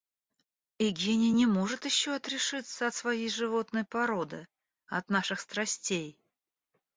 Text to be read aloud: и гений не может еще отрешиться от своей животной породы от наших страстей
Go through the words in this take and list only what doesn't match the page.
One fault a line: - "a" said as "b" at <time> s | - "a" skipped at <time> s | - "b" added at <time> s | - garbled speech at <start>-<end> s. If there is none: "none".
none